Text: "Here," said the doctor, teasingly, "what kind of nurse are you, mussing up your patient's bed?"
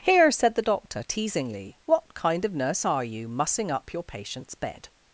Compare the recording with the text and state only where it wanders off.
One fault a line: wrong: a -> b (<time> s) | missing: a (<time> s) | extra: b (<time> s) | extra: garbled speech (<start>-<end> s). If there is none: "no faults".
no faults